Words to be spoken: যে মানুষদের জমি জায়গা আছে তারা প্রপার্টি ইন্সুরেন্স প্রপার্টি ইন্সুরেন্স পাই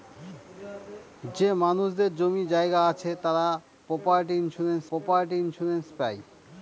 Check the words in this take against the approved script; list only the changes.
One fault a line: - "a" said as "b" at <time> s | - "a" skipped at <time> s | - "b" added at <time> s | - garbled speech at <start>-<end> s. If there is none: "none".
none